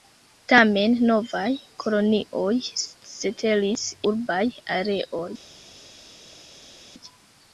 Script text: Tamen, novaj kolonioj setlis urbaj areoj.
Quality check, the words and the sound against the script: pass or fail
pass